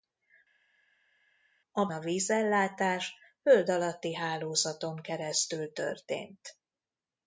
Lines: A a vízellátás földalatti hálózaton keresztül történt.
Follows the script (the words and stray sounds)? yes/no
yes